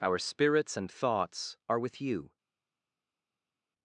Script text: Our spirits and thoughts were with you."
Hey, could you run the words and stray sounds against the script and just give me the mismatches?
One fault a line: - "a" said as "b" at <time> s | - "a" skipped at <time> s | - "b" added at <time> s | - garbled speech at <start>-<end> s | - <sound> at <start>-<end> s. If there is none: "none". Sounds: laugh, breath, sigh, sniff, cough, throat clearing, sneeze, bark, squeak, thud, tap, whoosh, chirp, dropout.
- "were" said as "are" at 1.7 s